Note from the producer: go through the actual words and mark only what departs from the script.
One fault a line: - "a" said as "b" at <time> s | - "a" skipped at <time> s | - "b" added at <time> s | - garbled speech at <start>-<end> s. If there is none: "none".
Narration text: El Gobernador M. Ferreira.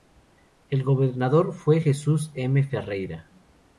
- "fue Jesús" added at 1.5 s